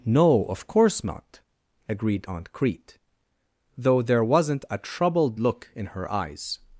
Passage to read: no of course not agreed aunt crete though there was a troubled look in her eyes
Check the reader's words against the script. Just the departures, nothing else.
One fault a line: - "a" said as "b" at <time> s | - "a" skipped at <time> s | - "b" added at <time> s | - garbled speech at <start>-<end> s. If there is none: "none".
- "was" said as "wasn't" at 4.2 s